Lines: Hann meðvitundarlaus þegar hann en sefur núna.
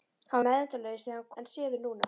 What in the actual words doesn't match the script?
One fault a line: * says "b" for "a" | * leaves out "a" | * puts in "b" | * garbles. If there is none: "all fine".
all fine